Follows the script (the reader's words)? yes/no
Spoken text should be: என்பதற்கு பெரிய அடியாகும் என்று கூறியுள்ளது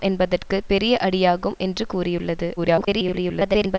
no